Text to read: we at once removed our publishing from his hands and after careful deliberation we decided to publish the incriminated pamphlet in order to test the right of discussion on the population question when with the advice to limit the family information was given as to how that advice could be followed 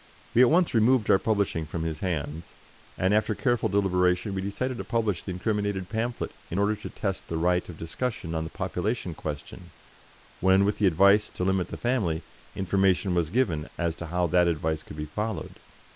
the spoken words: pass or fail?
pass